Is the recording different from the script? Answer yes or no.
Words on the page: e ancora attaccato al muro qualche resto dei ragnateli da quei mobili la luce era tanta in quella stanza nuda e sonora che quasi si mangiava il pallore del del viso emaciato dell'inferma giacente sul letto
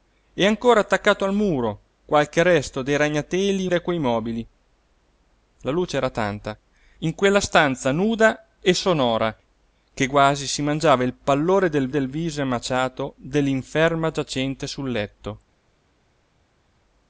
no